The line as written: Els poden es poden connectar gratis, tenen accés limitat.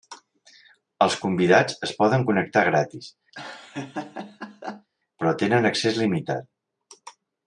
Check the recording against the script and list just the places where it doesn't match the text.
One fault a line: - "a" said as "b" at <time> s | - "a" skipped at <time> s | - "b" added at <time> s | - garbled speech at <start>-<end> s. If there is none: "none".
- "poden" said as "convidats" at 1.2 s
- "però" added at 5.2 s